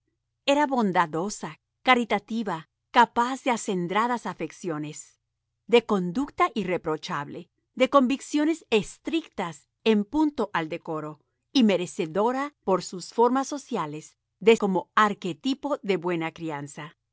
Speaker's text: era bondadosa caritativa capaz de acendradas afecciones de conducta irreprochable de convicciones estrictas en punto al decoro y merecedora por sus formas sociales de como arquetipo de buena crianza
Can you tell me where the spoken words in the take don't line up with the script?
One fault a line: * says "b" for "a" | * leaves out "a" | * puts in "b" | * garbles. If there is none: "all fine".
all fine